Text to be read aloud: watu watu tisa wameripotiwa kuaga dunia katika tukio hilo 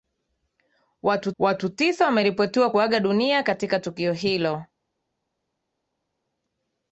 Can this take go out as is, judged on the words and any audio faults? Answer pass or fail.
pass